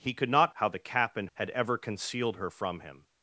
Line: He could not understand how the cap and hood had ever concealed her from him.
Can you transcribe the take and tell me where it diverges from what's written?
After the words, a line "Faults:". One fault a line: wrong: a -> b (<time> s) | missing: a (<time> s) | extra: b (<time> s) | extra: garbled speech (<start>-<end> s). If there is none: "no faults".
He could not how the cap and had ever concealed her from him.
Faults:
missing: understand (0.6 s)
missing: hood (1.3 s)